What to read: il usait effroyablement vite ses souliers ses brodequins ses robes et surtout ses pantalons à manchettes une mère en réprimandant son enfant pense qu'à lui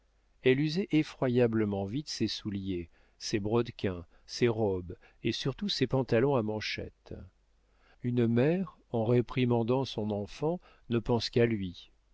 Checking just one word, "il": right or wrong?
wrong